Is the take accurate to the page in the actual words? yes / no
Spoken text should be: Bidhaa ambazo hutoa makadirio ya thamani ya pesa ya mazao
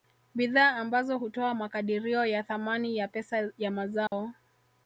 yes